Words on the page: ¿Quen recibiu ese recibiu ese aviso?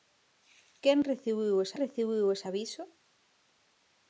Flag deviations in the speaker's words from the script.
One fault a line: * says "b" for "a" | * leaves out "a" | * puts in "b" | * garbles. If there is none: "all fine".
all fine